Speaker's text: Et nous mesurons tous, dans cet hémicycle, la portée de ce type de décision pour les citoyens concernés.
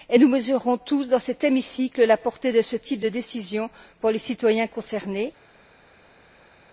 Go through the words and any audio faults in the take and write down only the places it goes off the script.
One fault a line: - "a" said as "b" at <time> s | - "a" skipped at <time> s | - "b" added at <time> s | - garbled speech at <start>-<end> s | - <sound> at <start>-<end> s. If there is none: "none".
none